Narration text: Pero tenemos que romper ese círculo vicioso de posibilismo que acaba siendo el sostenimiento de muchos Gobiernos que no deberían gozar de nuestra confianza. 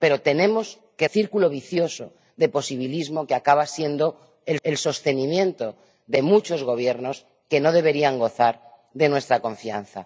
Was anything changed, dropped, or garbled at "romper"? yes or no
yes